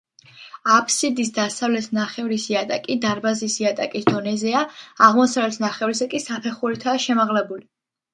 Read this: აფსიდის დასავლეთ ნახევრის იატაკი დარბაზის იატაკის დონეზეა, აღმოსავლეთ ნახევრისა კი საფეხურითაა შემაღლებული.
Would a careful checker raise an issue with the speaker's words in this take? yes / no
no